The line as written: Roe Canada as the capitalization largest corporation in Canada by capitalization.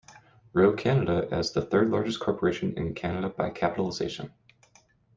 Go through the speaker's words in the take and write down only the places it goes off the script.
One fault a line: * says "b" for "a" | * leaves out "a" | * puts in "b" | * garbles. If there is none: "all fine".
* says "third" for "capitalization"